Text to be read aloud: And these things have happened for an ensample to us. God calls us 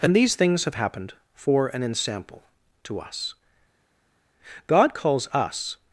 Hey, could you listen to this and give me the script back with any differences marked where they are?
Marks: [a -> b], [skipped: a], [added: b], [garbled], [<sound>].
And these things have happened for an ensample to us. God calls us